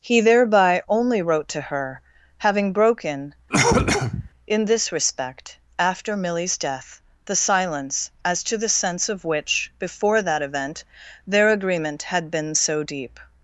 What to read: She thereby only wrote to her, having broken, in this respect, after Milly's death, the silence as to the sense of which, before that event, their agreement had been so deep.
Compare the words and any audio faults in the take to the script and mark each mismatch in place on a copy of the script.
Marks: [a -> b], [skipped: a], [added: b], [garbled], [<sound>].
[She -> He] thereby only wrote to her, having broken, [cough] in this respect, after Milly's death, the silence as to the sense of which, before that event, their agreement had been so deep.